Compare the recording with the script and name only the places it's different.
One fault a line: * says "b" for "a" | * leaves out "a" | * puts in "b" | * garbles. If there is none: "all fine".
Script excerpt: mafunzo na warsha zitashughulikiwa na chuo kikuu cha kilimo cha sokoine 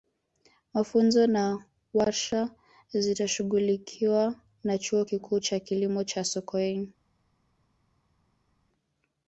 all fine